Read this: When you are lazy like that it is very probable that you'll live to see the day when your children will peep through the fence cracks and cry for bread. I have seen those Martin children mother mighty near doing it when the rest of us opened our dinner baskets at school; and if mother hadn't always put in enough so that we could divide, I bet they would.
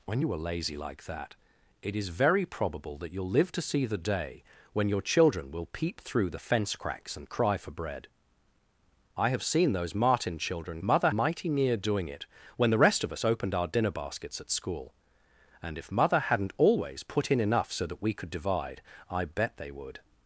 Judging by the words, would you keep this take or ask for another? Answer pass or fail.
pass